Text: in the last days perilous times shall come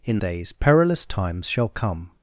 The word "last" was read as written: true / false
false